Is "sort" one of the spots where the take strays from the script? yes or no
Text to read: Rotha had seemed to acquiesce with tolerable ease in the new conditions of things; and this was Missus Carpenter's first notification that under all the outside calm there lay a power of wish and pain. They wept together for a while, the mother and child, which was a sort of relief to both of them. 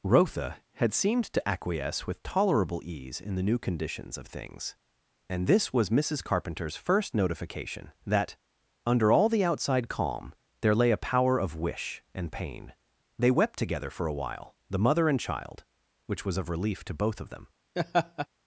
yes